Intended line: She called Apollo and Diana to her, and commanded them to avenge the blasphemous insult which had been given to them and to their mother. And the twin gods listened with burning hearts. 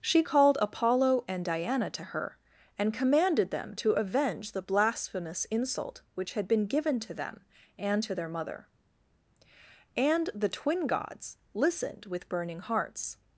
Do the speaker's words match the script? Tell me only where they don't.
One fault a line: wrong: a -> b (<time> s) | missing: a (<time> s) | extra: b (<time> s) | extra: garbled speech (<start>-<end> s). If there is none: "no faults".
no faults